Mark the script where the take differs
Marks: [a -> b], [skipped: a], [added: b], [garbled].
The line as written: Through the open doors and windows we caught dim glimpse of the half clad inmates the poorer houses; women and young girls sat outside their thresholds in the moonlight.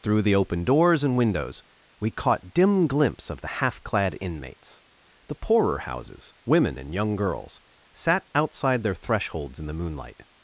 Through the open doors and windows we caught dim glimpse of the half clad inmates the poorer houses; women and young girls sat outside their thresholds in the moonlight.